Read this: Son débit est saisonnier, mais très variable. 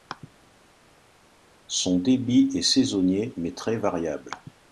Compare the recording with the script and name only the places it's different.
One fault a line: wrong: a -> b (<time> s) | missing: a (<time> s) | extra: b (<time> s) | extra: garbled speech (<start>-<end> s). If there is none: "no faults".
no faults